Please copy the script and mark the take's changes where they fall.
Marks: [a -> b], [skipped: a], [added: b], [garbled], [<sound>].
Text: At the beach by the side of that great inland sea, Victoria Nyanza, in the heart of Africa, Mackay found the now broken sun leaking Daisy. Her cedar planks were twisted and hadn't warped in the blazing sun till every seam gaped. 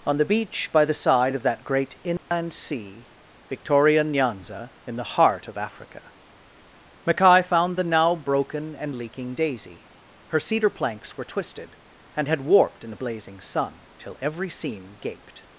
[At -> On] the beach by the side of that great inland [dropout] sea, Victoria Nyanza, in the heart of Africa, Mackay found the now broken [sun -> and] leaking Daisy. Her cedar planks were twisted and [hadn't -> had] warped in the blazing sun till every seam gaped.